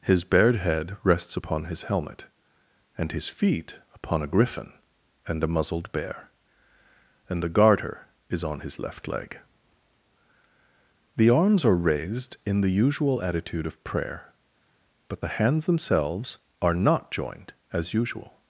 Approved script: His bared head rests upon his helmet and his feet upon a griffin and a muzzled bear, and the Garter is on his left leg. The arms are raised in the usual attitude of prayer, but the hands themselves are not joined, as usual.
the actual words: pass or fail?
pass